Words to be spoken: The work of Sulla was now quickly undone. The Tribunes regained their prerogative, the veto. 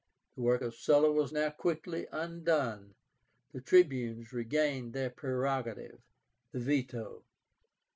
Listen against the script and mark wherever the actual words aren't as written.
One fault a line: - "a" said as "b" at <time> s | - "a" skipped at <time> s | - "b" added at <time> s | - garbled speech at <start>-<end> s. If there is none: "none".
none